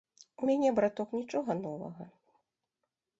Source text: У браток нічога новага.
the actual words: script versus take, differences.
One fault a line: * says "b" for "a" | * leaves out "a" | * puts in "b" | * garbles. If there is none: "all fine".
* puts in "мяне"